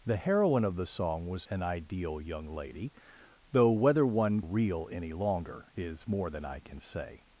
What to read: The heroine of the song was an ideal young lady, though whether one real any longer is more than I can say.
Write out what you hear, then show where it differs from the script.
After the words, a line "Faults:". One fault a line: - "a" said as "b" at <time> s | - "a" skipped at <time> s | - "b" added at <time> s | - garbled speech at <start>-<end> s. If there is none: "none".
The heroine of the song was an ideal young lady, though whether one real any longer is more than I can say.
Faults:
none